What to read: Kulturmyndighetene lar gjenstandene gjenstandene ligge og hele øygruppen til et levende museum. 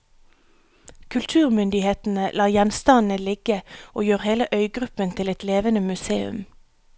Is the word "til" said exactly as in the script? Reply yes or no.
yes